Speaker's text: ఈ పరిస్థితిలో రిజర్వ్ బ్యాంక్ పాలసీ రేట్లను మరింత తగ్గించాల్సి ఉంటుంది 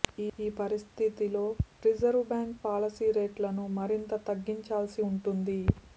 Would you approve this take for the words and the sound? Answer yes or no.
yes